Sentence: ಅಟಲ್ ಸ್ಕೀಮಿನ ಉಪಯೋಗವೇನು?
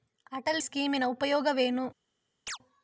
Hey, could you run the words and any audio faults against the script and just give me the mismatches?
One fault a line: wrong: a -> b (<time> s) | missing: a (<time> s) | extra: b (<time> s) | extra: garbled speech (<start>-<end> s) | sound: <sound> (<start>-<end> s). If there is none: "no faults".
sound: chirp (2.5-2.6 s)